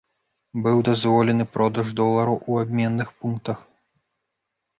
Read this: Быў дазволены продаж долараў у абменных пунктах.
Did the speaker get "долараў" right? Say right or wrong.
right